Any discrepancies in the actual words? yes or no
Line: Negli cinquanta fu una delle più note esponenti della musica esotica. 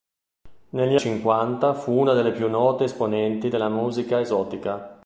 no